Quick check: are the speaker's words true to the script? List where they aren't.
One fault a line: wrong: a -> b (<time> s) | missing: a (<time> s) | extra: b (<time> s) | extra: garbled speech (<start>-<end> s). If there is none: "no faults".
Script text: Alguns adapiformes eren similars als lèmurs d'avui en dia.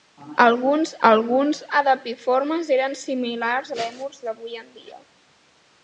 extra: alguns (1.1 s)
missing: als (3.7 s)